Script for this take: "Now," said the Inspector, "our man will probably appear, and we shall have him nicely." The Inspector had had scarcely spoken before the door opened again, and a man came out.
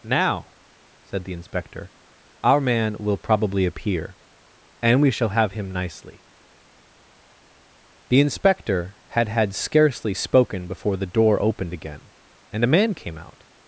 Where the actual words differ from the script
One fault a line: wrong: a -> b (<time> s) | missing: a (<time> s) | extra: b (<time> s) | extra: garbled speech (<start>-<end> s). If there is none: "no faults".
no faults